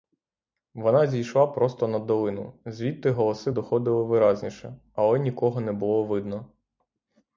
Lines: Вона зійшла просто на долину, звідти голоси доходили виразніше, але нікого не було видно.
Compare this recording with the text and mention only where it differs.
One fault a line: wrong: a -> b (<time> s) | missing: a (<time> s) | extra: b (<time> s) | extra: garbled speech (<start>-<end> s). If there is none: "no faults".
no faults